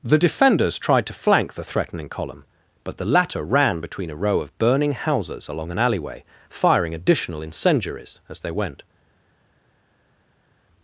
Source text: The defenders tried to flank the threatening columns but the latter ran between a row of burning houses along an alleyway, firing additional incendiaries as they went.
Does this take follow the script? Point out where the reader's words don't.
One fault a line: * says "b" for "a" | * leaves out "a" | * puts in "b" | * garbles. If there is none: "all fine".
* says "column" for "columns"